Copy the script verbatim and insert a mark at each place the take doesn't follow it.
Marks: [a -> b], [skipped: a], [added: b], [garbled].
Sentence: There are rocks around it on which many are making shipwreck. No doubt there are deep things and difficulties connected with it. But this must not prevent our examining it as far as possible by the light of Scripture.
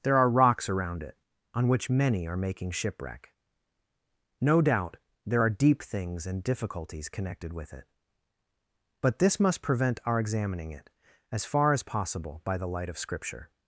There are rocks around it on which many are making shipwreck. No doubt there are deep things and difficulties connected with it. But this must [skipped: not] prevent our examining it as far as possible by the light of Scripture.